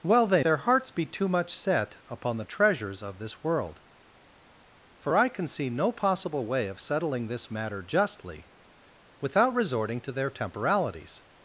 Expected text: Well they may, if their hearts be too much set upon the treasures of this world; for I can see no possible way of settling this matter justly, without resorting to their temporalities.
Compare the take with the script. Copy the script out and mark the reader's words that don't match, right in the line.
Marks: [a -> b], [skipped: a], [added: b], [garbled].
Well they [skipped: may, if] their hearts be too much set upon the treasures of this world; for I can see no possible way of settling this matter justly, without resorting to their temporalities.